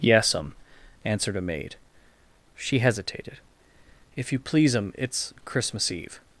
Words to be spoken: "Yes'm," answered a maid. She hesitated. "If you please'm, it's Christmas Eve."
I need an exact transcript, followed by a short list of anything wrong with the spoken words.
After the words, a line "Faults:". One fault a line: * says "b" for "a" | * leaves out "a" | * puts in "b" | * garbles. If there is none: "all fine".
"Yes'm," answered a maid. She hesitated. "If you please'm, it's Christmas Eve."
Faults:
all fine